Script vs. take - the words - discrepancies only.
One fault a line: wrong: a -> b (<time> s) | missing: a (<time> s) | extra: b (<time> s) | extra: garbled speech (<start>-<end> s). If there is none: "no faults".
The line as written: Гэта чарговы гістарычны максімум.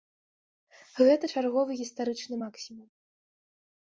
no faults